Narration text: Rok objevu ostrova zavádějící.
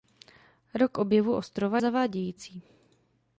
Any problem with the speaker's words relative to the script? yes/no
no